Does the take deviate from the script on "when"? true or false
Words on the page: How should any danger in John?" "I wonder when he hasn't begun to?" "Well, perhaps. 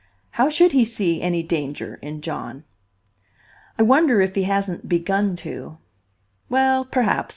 true